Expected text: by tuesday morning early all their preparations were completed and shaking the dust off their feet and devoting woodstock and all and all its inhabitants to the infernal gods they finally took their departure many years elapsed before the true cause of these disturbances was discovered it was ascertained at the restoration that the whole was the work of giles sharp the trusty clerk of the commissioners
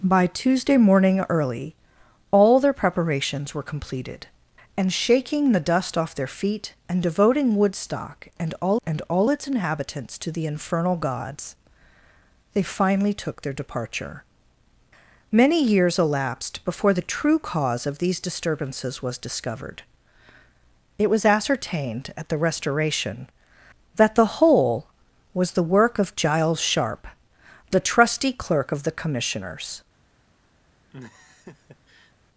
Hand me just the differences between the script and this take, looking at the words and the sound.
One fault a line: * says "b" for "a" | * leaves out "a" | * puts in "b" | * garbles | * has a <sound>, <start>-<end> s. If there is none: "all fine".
* has a laugh, 30.9-32.1 s